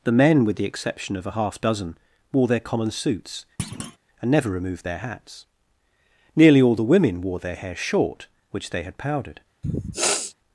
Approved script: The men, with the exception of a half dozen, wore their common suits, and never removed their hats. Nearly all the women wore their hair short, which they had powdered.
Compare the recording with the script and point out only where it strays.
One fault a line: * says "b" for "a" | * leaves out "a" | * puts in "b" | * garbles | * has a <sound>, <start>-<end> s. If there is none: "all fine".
* has a thud, 3.6-4.0 s
* has a sniff, 9.6-10.3 s